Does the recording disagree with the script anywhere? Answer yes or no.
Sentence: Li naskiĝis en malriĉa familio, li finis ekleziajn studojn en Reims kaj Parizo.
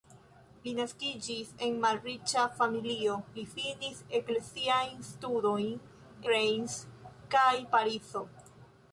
yes